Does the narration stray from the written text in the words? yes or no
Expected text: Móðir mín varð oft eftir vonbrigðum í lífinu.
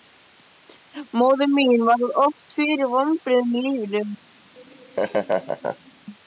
yes